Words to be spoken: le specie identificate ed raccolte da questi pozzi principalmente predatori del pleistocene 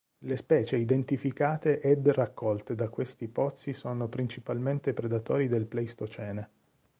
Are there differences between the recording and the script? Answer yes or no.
yes